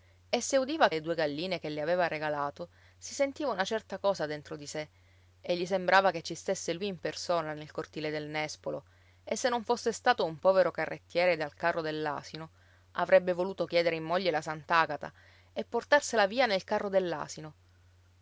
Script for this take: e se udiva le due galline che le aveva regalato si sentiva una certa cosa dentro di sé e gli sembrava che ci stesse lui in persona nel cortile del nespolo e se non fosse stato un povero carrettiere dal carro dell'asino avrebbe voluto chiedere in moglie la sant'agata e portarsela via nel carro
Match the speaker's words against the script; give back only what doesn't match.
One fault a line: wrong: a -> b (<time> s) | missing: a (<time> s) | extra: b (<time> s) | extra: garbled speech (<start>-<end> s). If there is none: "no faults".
no faults